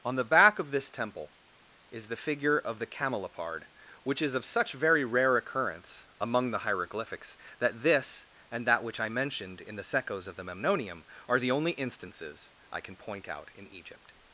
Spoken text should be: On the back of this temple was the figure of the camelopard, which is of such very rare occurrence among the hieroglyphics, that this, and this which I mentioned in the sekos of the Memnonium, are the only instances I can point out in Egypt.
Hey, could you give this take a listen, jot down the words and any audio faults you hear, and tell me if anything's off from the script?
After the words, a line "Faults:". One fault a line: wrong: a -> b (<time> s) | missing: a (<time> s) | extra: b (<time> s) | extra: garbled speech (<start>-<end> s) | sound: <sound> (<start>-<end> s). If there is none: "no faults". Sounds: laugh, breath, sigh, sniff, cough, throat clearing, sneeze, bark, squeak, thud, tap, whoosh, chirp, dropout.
On the back of this temple is the figure of the camelopard, which is of such very rare occurrence among the hieroglyphics, that this, and that which I mentioned in the sekos of the Memnonium, are the only instances I can point out in Egypt.
Faults:
wrong: was -> is (1.9 s)
wrong: this -> that (8.7 s)